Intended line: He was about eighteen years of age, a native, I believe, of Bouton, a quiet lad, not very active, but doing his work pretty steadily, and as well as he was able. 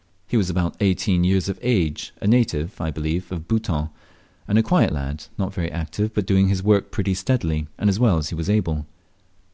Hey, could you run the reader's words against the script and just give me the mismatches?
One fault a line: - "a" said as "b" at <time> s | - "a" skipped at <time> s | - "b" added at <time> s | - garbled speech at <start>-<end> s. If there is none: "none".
- "and" added at 4.5 s